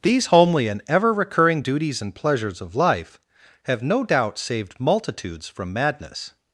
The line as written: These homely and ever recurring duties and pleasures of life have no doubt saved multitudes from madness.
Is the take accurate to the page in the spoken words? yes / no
yes